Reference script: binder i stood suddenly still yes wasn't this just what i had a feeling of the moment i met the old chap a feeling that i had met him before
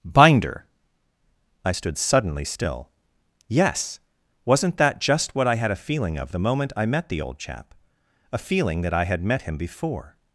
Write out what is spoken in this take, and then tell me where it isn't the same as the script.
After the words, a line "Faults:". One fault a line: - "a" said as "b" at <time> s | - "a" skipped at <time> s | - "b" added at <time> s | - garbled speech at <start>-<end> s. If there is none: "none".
binder i stood suddenly still yes wasn't that just what i had a feeling of the moment i met the old chap a feeling that i had met him before
Faults:
- "this" said as "that" at 4.8 s